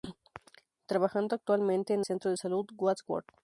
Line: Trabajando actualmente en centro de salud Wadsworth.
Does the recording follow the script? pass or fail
pass